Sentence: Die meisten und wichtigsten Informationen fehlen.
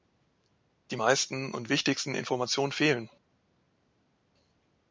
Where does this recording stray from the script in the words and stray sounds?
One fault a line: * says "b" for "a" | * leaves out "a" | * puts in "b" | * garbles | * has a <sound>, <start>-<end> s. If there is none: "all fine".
all fine